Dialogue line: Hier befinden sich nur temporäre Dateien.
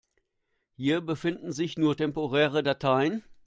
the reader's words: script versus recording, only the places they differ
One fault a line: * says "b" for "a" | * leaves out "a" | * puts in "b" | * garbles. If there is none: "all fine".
all fine